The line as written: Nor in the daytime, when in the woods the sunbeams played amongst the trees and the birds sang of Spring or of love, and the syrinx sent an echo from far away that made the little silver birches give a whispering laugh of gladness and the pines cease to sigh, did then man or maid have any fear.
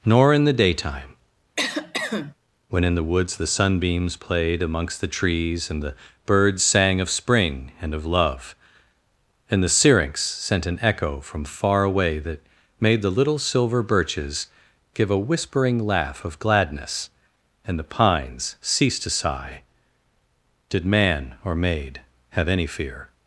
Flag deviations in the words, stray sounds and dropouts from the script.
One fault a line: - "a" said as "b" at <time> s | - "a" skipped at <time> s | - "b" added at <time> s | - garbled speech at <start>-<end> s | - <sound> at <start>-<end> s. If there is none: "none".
- cough at 1.6-2.3 s
- "or" said as "and" at 7.8 s
- "then" skipped at 20.9 s